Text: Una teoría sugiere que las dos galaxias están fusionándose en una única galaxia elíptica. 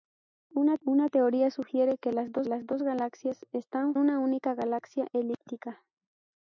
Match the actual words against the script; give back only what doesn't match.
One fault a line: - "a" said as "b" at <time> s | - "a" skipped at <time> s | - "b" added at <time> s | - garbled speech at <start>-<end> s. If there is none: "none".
- "una" added at 0.9 s
- "las dos" added at 2.4 s
- "fusionándose en" skipped at 4.0 s